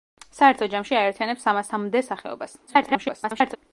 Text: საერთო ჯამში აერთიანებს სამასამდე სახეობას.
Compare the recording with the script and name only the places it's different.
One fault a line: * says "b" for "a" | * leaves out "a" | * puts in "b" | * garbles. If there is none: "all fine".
* garbles